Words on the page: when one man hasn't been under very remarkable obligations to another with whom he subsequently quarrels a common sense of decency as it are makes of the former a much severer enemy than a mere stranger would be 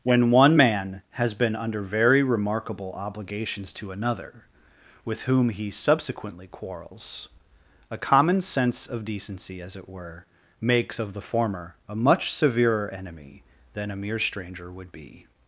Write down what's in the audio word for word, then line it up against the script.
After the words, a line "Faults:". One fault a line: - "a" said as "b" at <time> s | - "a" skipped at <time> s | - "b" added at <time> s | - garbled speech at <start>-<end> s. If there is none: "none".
when one man has been under very remarkable obligations to another with whom he subsequently quarrels a common sense of decency as it were makes of the former a much severer enemy than a mere stranger would be
Faults:
- "hasn't" said as "has" at 1.1 s
- "are" said as "were" at 9.9 s